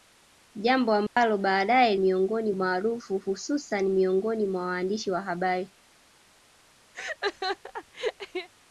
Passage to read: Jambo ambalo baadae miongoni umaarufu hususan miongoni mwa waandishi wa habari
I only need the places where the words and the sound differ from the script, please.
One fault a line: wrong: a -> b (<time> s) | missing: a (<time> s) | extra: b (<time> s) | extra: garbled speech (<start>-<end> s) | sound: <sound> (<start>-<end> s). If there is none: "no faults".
sound: dropout (1.1-1.2 s)
sound: laugh (6.9-8.5 s)